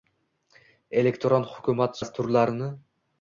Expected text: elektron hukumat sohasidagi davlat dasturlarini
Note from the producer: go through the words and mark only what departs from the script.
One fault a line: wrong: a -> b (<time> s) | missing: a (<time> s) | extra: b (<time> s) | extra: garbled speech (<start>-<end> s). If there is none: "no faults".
missing: sohasidagi davlat (2.0 s)